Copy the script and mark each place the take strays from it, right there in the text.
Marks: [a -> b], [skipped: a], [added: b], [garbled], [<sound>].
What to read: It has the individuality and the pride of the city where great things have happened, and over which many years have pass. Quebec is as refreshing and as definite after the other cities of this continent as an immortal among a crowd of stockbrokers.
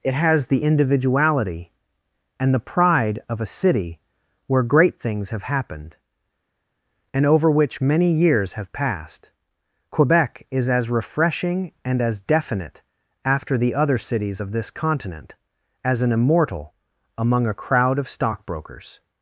It has the individuality and the pride of [the -> a] city where great things have happened, and over which many years have [pass. -> passed] Quebec is as refreshing and as definite after the other cities of this continent as an immortal among a crowd of stockbrokers.